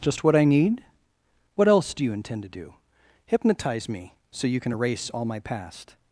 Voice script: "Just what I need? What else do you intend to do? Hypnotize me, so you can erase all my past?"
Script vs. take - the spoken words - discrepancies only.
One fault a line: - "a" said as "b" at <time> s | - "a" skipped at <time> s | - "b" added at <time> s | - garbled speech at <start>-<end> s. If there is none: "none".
none